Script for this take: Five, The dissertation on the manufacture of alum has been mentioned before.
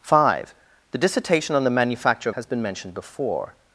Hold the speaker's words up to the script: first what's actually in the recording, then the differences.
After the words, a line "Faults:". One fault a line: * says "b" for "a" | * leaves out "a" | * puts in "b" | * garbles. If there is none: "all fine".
Five, The dissertation on the manufacture of has been mentioned before.
Faults:
* leaves out "alum"